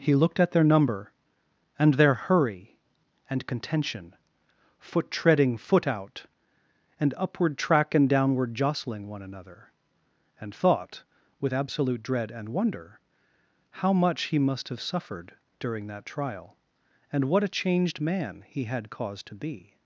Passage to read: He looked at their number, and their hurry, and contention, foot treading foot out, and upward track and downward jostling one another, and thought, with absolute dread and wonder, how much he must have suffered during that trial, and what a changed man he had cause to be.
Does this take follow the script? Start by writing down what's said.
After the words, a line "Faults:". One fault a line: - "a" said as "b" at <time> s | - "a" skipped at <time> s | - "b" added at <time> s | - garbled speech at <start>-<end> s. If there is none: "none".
He looked at their number, and their hurry, and contention, foot treading foot out, and upward track and downward jostling one another, and thought, with absolute dread and wonder, how much he must have suffered during that trial, and what a changed man he had cause to be.
Faults:
none